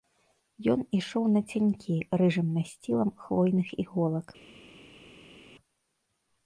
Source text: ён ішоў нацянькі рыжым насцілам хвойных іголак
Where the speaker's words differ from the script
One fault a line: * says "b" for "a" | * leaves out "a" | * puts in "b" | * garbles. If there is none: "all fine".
all fine